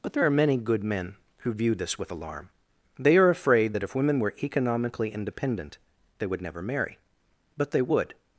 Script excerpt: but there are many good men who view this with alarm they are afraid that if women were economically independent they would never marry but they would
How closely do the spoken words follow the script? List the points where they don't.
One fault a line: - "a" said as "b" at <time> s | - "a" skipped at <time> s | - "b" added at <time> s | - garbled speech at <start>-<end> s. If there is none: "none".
none